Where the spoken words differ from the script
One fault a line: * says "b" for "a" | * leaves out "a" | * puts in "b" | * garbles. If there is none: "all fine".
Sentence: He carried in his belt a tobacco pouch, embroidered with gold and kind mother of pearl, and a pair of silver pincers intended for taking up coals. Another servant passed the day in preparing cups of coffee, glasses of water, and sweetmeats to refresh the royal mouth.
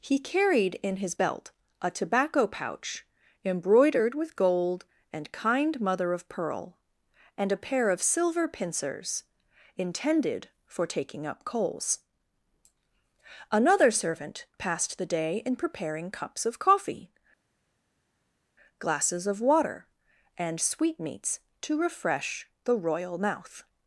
all fine